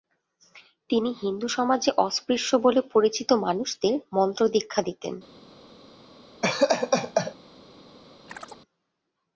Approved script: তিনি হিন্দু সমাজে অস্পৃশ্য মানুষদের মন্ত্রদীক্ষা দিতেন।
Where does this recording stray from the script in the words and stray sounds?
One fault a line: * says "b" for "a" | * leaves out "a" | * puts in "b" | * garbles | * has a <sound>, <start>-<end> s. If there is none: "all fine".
* puts in "বলে পরিচিত"
* has a laugh, 6.4-7.3 s
* has a chirp, 8.3-8.6 s